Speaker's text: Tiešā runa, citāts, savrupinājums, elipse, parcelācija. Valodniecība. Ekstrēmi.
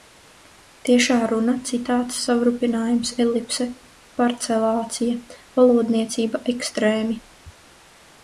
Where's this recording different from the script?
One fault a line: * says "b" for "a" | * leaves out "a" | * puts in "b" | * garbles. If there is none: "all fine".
all fine